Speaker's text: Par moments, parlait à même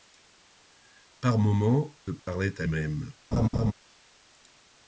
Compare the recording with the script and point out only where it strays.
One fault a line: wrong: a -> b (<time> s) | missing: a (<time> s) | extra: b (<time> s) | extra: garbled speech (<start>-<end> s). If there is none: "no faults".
no faults